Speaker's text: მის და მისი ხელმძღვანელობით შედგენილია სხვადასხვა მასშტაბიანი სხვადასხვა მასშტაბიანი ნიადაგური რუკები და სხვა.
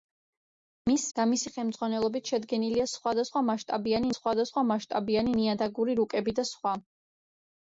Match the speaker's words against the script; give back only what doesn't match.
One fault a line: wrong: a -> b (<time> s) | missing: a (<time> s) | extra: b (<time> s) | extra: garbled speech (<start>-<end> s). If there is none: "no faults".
no faults